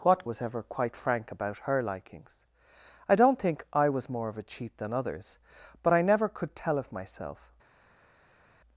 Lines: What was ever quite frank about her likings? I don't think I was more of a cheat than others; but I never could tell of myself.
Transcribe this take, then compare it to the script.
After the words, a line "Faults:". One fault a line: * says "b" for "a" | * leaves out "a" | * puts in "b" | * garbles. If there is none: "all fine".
What was ever quite frank about her likings? I don't think I was more of a cheat than others; but I never could tell of myself.
Faults:
all fine